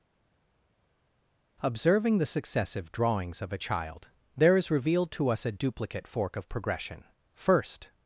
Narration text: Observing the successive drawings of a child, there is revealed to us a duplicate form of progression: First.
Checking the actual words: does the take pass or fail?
fail